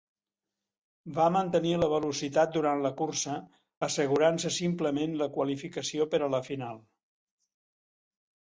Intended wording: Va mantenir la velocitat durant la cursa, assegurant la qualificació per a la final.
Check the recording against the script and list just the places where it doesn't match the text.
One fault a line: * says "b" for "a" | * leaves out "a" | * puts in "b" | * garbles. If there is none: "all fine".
* puts in "se simplement"